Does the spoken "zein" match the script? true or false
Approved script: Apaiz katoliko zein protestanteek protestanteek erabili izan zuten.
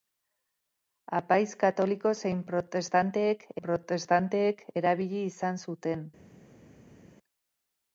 true